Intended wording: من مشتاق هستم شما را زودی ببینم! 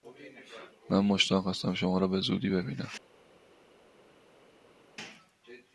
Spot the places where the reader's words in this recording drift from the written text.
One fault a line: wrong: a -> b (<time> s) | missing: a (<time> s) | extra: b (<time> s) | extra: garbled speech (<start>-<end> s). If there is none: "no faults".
extra: به (2.1 s)